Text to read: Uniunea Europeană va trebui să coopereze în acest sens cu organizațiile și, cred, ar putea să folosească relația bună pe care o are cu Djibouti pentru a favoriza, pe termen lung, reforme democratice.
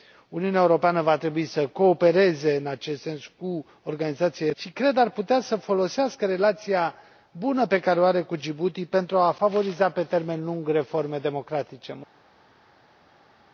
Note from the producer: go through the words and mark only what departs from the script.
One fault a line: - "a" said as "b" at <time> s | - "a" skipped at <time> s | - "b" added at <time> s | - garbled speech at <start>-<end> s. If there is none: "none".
none